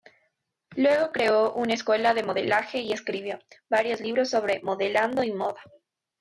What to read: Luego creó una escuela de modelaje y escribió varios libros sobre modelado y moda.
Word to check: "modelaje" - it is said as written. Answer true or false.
true